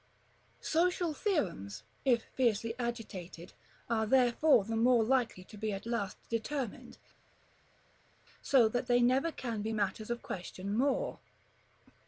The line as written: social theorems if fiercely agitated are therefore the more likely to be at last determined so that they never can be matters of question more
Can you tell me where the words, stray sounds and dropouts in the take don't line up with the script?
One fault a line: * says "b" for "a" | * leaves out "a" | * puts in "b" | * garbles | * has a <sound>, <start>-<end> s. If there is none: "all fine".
all fine